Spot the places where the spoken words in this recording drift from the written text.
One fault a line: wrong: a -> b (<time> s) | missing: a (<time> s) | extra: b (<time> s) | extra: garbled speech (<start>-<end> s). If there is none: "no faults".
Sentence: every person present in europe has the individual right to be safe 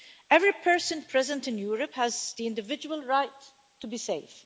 no faults